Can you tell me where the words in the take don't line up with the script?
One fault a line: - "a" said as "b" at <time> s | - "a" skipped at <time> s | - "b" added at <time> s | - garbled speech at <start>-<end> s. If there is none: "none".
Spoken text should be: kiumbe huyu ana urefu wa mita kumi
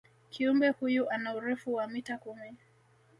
none